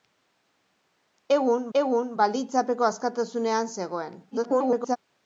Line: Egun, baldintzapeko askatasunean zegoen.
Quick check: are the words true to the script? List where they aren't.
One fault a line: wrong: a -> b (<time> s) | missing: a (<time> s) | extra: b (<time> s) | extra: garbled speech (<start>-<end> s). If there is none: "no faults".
extra: egun (1.8 s)
extra: garbled speech (4.3-5.0 s)